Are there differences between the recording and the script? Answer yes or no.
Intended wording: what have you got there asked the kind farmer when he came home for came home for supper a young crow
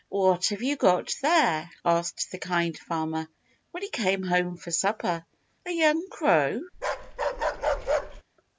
yes